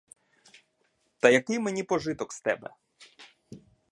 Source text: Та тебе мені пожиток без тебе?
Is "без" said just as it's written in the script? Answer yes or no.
no